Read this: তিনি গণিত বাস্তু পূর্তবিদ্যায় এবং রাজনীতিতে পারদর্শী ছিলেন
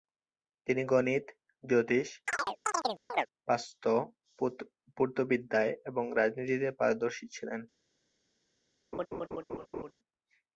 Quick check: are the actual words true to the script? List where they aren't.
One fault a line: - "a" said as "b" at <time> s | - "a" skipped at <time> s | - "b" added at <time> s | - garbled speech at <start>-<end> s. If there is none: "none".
- "জ্যোতিষ" added at 1.6 s